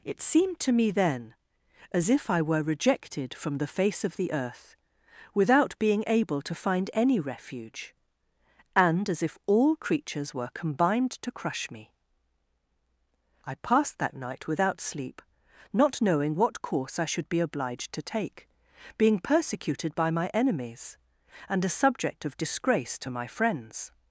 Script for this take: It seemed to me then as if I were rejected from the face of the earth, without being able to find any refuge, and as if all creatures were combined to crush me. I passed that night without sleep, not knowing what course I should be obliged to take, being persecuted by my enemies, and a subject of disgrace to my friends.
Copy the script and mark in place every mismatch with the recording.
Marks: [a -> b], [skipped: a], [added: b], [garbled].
It seemed to me then as if I were rejected from the face of the earth, without being able to find any refuge, and as if all creatures were combined to crush me. I passed that night without sleep, not knowing what course I should be obliged to take, being persecuted by my enemies, and a subject of disgrace to my friends.